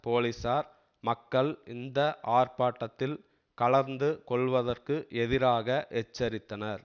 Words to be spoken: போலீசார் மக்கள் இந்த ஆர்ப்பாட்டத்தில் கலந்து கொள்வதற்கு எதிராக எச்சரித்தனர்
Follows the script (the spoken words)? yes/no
yes